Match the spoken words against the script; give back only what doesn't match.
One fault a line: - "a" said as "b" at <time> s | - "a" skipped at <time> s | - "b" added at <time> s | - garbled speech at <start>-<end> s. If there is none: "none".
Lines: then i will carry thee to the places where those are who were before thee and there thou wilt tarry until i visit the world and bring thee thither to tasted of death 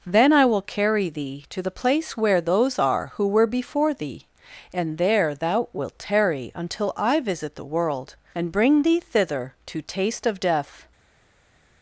- "places" said as "place" at 1.8 s
- "tasted" said as "taste" at 9.8 s